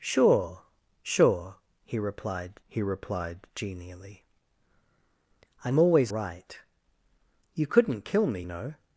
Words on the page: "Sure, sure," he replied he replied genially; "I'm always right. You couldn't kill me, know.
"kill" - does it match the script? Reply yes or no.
yes